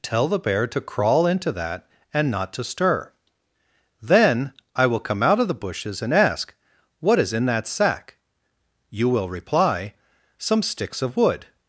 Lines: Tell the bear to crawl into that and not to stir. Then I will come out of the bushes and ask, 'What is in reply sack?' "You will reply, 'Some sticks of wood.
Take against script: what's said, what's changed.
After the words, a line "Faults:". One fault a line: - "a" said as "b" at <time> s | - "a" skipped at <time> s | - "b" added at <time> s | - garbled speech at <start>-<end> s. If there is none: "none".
Tell the bear to crawl into that and not to stir. Then I will come out of the bushes and ask, 'What is in that sack?' "You will reply, 'Some sticks of wood.
Faults:
- "reply" said as "that" at 7.5 s